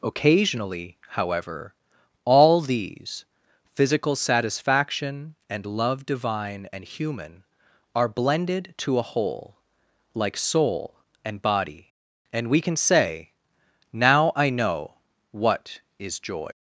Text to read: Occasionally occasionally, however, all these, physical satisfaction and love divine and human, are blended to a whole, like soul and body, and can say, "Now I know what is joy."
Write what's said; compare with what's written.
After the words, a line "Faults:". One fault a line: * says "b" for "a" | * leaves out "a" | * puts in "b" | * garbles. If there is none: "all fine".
Occasionally, however, all these, physical satisfaction and love divine and human, are blended to a whole, like soul and body, and we can say, "Now I know what is joy."
Faults:
* leaves out "occasionally"
* puts in "we"